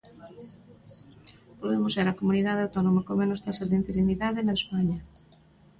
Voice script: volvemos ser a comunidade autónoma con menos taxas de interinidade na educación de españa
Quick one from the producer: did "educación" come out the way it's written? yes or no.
no